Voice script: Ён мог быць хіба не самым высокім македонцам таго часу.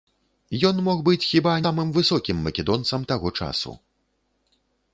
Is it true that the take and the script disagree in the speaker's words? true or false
true